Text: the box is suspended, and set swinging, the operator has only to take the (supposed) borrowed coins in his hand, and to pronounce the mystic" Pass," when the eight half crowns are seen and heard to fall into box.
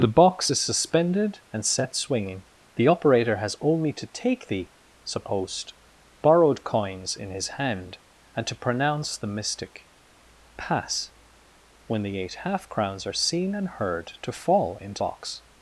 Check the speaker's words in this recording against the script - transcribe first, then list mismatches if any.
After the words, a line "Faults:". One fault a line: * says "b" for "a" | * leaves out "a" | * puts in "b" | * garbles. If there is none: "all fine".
the box is suspended, and set swinging, the operator has only to take the (supposed) borrowed coins in his hand, and to pronounce the mystic" Pass," when the eight half crowns are seen and heard to fall into box.
Faults:
all fine